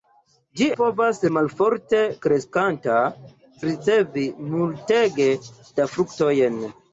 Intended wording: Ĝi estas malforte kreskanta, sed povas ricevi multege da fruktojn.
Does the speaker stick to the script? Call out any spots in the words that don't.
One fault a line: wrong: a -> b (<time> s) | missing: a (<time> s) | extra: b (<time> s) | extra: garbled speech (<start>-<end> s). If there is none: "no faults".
wrong: estas -> povas (0.8 s)
missing: sed povas (3.0 s)